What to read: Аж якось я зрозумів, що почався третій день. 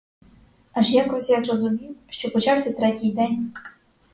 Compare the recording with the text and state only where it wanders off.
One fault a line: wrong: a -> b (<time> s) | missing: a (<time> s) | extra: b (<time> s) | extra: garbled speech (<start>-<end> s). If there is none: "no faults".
no faults